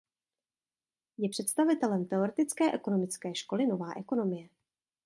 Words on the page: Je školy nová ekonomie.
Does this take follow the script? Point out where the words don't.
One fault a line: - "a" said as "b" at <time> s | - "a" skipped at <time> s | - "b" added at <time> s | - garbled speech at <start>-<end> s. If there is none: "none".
- "představitelem teoretické ekonomické" added at 1.3 s